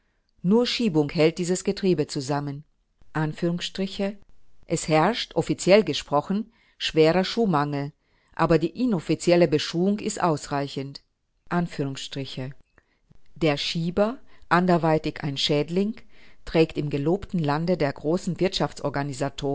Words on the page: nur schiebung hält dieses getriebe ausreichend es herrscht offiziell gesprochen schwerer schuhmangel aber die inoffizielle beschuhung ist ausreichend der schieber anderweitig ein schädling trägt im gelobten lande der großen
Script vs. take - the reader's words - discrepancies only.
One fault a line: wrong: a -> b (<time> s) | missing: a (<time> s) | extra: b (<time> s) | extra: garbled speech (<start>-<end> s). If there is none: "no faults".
wrong: ausreichend -> zusammen (2.1 s)